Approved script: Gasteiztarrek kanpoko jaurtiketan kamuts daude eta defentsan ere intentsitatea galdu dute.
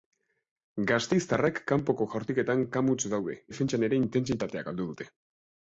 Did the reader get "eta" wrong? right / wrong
wrong